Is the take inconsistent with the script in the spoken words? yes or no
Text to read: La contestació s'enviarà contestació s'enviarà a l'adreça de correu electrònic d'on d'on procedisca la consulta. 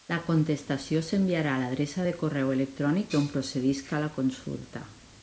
yes